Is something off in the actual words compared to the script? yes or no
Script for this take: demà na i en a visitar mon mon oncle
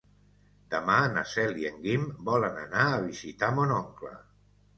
yes